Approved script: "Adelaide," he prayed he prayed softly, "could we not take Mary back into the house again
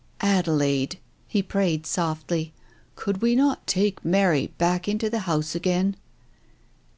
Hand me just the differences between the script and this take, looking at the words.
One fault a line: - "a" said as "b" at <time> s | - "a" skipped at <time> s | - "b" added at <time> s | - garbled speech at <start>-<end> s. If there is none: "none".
- "he prayed" skipped at 1.9 s